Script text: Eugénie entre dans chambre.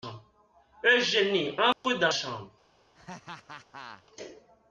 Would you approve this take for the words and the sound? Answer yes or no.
no